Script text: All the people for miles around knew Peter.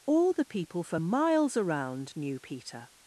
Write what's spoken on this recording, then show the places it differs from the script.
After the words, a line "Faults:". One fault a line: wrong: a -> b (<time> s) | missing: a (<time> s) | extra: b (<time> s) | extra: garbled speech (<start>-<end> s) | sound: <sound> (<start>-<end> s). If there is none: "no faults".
All the people for miles around knew Peter.
Faults:
no faults